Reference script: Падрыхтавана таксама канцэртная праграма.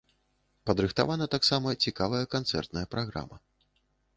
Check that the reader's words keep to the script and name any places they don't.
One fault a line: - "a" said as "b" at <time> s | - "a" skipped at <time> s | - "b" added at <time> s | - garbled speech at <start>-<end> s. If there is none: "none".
- "цікавая" added at 1.9 s